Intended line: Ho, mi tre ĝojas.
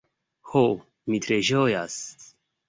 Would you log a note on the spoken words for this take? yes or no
no